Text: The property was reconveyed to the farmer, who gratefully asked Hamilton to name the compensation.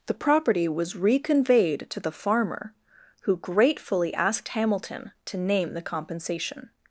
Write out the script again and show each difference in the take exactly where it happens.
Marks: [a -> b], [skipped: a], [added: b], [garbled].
The property was reconveyed to the farmer, who gratefully asked Hamilton to name the compensation.